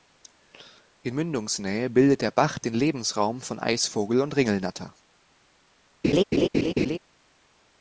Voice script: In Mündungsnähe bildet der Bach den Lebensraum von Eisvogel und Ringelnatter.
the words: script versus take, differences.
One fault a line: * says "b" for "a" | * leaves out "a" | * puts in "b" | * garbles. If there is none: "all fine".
all fine